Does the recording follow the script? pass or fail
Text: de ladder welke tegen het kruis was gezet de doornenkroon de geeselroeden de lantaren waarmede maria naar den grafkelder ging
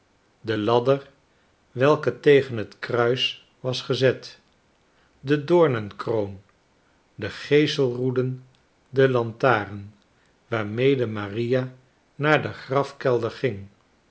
pass